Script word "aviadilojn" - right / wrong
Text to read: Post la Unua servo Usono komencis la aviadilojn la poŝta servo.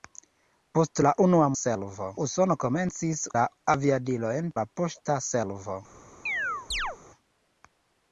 right